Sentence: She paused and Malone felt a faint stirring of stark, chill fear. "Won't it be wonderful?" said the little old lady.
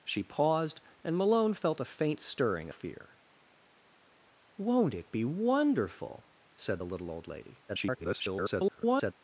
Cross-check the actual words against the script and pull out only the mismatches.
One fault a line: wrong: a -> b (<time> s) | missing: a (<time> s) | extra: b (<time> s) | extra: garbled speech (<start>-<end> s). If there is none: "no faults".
missing: of stark chill (2.7 s)
extra: garbled speech (7.7-9.1 s)